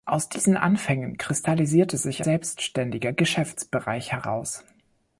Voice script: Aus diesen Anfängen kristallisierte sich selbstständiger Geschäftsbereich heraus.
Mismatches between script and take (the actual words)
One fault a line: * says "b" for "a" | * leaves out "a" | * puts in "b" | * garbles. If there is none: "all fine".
all fine